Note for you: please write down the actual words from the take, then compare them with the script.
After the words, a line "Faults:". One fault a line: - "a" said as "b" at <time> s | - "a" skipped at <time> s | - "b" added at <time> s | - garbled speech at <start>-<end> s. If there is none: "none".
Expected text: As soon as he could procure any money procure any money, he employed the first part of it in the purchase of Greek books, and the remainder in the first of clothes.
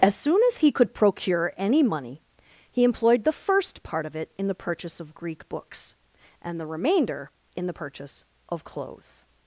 As soon as he could procure any money, he employed the first part of it in the purchase of Greek books, and the remainder in the purchase of clothes.
Faults:
- "procure any money" skipped at 2.2 s
- "first" said as "purchase" at 7.7 s